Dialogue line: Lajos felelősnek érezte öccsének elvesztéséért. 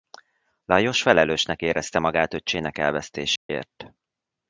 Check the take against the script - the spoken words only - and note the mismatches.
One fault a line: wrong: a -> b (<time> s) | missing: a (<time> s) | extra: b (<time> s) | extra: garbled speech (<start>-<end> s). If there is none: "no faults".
extra: magát (2.0 s)